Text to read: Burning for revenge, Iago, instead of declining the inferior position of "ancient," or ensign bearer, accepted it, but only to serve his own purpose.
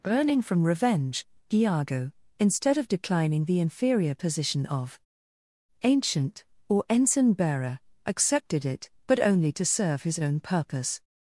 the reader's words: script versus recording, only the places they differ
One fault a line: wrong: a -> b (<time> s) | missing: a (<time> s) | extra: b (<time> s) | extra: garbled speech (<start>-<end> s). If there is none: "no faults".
wrong: for -> from (0.4 s)